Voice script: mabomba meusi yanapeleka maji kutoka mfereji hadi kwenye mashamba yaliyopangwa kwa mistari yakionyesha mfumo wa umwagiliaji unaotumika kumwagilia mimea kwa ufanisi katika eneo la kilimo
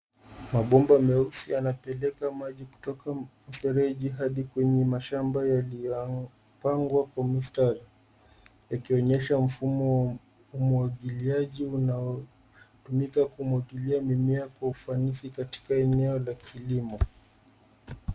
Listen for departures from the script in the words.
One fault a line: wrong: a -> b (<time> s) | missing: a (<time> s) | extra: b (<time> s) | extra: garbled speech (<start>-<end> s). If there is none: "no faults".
no faults